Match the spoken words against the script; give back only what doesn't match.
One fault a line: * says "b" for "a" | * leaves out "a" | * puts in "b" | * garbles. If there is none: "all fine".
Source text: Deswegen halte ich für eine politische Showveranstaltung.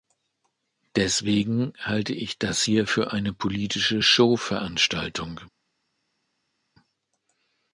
* puts in "das hier"